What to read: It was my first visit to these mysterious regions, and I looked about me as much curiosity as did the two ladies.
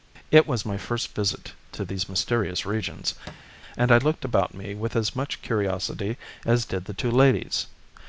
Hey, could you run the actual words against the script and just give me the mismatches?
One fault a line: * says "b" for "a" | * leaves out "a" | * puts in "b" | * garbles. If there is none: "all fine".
* puts in "with"